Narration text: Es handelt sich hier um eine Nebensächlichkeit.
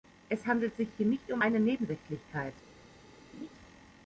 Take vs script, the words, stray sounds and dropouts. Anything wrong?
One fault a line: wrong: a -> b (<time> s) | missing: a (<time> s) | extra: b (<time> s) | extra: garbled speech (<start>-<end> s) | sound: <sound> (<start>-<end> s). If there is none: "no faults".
extra: nicht (1.1 s)
sound: laugh (3.3-3.5 s)